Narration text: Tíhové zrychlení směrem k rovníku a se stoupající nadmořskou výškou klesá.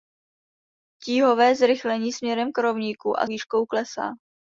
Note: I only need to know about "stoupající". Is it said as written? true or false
false